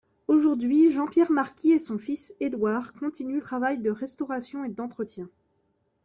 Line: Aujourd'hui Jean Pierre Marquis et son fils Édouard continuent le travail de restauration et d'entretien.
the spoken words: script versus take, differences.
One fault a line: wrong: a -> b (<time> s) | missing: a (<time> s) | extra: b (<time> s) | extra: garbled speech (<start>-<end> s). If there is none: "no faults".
missing: le (3.4 s)